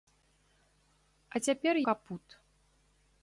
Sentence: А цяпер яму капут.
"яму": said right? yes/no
no